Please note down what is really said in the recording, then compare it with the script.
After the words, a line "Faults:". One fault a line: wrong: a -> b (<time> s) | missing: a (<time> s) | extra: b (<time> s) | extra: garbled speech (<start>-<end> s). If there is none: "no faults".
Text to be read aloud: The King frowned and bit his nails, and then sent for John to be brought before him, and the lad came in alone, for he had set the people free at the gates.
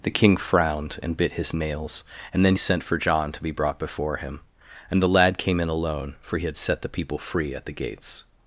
The King frowned and bit his nails, and then sent for John to be brought before him, and the lad came in alone, for he had set the people free at the gates.
Faults:
no faults